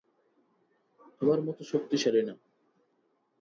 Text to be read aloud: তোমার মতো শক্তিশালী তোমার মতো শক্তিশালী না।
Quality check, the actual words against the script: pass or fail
fail